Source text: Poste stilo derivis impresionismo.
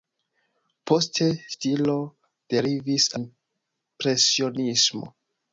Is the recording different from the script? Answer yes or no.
no